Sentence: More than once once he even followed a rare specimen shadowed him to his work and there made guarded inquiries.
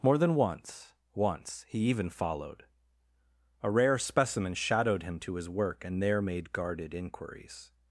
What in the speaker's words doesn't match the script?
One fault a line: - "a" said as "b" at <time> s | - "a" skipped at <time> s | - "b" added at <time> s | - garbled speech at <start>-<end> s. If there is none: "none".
none